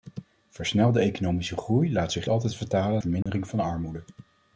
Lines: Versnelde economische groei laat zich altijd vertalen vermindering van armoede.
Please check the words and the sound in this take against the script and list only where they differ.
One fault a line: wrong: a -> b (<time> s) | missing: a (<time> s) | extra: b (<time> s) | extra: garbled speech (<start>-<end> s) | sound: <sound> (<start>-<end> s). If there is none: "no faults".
sound: dropout (3.2-3.3 s)